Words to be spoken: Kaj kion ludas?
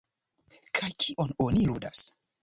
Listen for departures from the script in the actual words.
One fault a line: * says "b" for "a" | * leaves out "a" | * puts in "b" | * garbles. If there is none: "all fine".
* puts in "oni"